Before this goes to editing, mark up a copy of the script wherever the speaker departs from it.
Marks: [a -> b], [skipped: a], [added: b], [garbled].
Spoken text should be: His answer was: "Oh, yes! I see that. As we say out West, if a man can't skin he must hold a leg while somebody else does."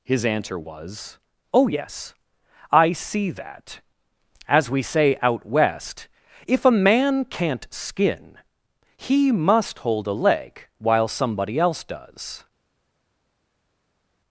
His answer was: "Oh, yes! I see that. As we say out West, if a man can't skin he must hold a leg while somebody else does."